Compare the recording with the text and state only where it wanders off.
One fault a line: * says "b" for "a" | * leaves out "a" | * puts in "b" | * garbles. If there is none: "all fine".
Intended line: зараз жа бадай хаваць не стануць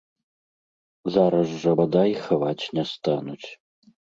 all fine